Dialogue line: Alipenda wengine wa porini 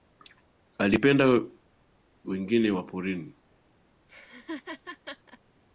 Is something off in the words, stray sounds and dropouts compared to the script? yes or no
yes